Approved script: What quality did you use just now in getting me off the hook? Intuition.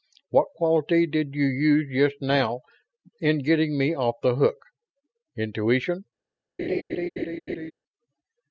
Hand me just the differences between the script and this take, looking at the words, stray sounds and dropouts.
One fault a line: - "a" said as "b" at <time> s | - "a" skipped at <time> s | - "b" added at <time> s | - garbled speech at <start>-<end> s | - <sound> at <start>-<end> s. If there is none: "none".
- laugh at 6.6-7.7 s